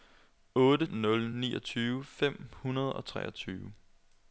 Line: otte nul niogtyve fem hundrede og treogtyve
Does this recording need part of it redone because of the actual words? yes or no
no